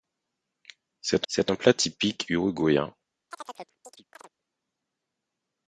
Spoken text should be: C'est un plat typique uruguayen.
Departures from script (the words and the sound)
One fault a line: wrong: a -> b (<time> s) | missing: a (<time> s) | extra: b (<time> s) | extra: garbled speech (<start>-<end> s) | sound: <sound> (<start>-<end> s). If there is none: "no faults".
extra: c'est (1.3 s)
sound: chirp (3.3-4.3 s)